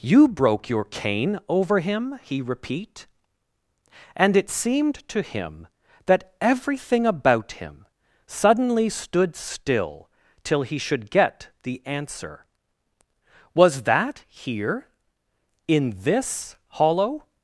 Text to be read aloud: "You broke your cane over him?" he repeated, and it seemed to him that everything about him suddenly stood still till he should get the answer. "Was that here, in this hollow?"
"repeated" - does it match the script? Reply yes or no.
no